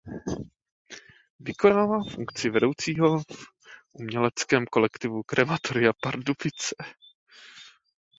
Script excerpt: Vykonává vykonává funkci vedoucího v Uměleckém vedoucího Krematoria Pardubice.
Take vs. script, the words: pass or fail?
fail